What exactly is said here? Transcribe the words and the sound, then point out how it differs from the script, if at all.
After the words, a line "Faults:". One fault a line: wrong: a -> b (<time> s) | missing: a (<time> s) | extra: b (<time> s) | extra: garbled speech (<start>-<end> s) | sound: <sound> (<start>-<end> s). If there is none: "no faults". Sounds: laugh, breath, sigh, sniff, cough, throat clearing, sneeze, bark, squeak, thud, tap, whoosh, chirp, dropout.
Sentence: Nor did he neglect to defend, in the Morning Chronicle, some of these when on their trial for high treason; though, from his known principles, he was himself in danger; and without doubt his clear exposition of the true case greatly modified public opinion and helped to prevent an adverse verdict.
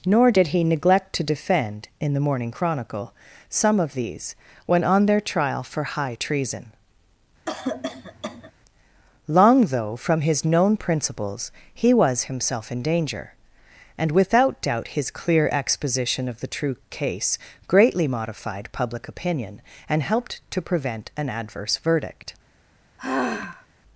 Nor did he neglect to defend, in the Morning Chronicle, some of these when on their trial for high treason; long though, from his known principles, he was himself in danger; and without doubt his clear exposition of the true case greatly modified public opinion and helped to prevent an adverse verdict.
Faults:
sound: cough (7.5-8.5 s)
extra: long (9.3 s)
sound: sigh (23.0-23.7 s)